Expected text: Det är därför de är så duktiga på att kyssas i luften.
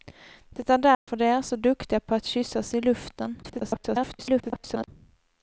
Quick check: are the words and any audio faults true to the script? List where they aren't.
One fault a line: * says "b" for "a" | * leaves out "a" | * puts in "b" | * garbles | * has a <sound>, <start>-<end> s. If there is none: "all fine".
* has a dropout, 0.9-1.1 s
* garbles